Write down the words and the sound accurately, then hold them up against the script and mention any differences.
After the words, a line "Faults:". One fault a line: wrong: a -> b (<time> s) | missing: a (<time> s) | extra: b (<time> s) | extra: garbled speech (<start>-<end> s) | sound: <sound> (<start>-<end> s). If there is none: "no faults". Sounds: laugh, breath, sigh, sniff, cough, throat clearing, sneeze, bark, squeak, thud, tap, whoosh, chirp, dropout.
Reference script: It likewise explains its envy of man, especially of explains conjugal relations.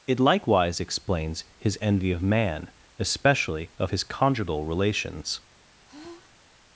It likewise explains his envy of man, especially of his conjugal relations.
Faults:
wrong: its -> his (1.6 s)
wrong: explains -> his (3.9 s)
sound: sigh (5.8-6.4 s)